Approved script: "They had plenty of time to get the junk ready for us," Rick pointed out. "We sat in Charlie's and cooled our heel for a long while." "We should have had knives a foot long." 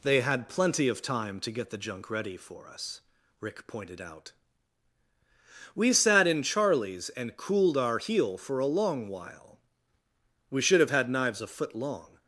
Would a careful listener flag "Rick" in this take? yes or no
no